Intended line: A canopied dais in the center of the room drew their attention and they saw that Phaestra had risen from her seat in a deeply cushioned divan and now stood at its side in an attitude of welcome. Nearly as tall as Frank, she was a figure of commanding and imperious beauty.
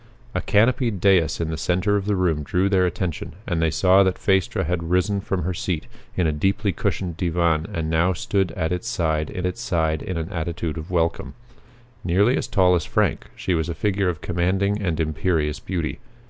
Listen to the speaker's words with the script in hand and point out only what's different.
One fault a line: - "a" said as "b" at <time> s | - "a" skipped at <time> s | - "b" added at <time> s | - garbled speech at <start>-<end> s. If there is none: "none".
- "its side in" added at 9.4 s